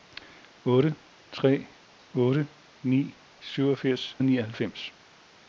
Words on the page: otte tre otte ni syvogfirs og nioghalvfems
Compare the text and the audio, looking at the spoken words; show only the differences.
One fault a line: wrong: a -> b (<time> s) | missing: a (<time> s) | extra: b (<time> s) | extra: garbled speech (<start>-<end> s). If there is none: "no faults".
no faults